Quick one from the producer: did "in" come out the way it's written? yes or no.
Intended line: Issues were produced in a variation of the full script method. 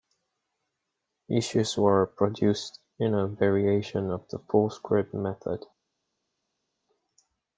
yes